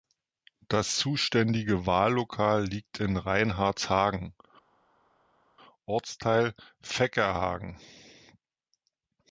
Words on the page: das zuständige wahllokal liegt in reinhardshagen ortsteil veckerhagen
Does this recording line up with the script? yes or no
yes